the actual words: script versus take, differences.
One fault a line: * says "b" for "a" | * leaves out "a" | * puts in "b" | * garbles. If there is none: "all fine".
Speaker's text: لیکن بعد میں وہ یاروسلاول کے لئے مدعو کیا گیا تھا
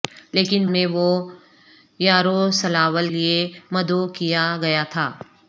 * leaves out "بعد"
* leaves out "کے"